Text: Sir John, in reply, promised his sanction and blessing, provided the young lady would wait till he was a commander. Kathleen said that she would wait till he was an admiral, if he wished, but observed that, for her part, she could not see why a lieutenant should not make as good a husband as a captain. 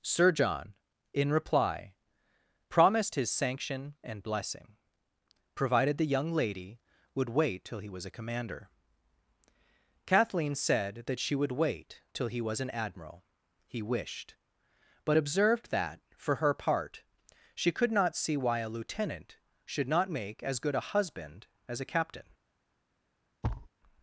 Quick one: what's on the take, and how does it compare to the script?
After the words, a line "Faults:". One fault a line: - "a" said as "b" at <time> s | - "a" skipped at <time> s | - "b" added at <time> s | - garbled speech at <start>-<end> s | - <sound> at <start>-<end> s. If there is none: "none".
Sir John, in reply, promised his sanction and blessing, provided the young lady would wait till he was a commander. Kathleen said that she would wait till he was an admiral, he wished, but observed that, for her part, she could not see why a lieutenant should not make as good a husband as a captain.
Faults:
- "if" skipped at 13.2 s
- thud at 23.4-23.7 s